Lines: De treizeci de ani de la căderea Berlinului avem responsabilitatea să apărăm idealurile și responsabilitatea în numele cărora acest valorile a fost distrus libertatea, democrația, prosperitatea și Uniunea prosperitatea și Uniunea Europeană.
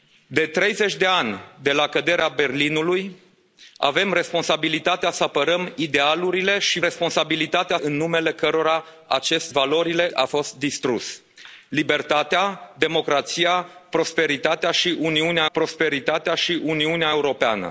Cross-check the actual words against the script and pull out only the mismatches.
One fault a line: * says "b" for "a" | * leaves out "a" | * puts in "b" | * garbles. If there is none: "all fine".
all fine